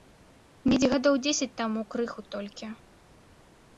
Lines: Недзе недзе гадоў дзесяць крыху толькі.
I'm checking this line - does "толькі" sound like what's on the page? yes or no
yes